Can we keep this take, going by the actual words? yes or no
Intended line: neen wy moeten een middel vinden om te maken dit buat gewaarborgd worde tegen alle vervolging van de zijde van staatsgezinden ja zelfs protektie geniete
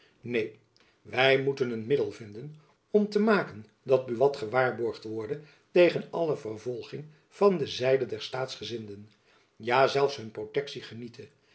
no